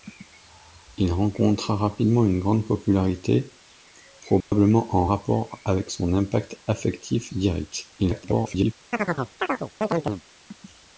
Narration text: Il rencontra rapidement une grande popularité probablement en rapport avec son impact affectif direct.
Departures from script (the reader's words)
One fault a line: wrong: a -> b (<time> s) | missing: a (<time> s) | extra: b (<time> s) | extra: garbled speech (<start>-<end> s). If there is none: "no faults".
extra: garbled speech (8.0-8.7 s)